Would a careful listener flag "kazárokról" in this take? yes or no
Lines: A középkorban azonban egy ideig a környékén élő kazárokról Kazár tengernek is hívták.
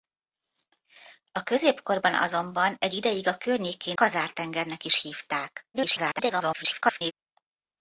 yes